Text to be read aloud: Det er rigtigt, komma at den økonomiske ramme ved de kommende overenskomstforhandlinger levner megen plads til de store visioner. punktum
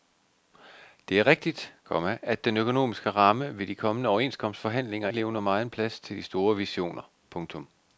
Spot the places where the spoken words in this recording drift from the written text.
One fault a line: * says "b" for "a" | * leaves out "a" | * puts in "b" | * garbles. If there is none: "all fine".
all fine